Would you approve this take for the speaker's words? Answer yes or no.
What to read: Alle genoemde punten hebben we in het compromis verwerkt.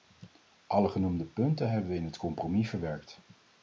yes